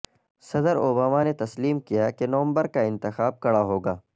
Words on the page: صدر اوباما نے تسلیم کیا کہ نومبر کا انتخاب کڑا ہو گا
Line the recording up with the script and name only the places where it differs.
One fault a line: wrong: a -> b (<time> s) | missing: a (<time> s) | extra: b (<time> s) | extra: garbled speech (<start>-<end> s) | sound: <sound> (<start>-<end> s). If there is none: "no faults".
no faults